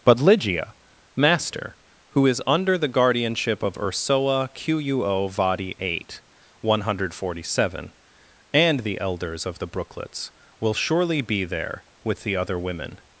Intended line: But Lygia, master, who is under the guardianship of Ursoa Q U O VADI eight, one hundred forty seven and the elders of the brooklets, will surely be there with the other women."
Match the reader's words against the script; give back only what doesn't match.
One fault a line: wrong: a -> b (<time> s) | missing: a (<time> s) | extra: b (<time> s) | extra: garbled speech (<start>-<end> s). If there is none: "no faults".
no faults